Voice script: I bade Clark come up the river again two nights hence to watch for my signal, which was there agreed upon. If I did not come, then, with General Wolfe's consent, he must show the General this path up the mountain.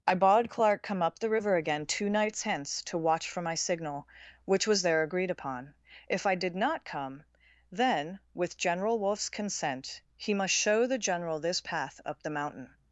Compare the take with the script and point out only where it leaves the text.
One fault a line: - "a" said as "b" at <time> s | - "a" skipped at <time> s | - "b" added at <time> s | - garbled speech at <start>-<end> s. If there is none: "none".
none